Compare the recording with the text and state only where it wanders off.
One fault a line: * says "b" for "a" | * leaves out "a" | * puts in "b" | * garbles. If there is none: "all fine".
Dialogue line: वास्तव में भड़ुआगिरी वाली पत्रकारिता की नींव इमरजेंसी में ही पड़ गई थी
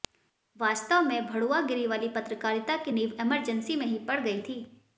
all fine